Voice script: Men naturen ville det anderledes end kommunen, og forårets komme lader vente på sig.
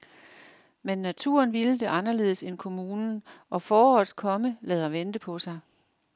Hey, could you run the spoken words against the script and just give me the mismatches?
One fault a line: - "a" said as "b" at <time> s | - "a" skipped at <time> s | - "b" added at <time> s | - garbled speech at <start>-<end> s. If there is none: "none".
none